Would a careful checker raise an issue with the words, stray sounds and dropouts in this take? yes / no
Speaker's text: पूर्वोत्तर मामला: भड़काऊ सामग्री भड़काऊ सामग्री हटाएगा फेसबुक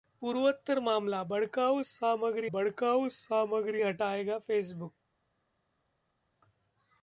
no